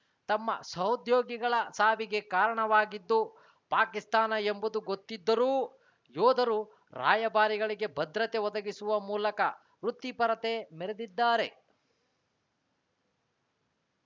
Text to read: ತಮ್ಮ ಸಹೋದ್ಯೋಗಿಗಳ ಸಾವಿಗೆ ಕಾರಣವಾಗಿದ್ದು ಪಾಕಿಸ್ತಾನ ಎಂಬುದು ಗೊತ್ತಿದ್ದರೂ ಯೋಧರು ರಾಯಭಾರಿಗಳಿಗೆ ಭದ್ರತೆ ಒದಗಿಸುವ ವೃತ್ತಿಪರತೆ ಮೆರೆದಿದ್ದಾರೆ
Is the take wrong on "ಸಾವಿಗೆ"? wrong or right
right